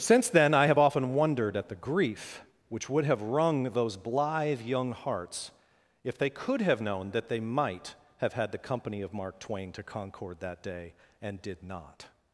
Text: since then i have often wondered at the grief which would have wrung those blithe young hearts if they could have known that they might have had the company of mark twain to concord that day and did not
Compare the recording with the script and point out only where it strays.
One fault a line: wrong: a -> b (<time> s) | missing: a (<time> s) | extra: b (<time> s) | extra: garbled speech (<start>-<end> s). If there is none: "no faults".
no faults